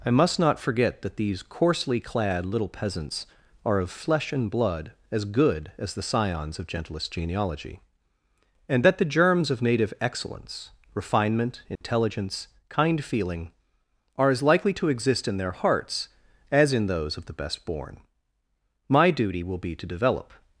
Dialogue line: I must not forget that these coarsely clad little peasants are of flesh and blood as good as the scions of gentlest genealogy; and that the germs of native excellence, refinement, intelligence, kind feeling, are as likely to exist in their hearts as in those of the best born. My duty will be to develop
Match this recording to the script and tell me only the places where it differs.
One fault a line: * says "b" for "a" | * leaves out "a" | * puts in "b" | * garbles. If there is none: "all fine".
all fine